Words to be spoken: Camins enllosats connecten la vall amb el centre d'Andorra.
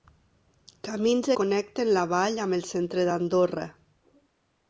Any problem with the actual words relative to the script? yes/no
yes